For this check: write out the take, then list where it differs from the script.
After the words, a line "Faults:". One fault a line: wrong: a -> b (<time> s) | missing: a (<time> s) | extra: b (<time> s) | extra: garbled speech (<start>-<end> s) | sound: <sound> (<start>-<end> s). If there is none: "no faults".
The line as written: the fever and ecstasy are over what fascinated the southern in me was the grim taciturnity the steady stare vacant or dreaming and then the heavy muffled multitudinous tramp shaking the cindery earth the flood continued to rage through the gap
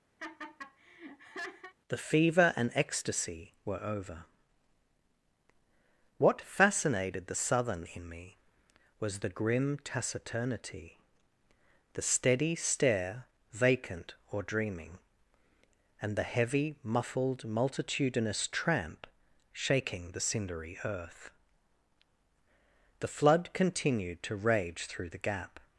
the fever and ecstasy were over what fascinated the southern in me was the grim taciturnity the steady stare vacant or dreaming and the heavy muffled multitudinous tramp shaking the cindery earth the flood continued to rage through the gap
Faults:
sound: laugh (0.2-1.7 s)
wrong: are -> were (3.7 s)
missing: then (16.2 s)